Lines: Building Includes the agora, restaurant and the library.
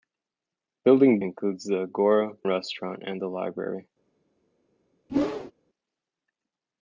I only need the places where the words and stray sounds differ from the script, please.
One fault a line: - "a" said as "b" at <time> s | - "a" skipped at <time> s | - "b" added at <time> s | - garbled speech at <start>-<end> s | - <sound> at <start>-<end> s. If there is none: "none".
- whoosh at 5.1-5.5 s